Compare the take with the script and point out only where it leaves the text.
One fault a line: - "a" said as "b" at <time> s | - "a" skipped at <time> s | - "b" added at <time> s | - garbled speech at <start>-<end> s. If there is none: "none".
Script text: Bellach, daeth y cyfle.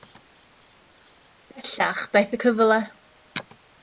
none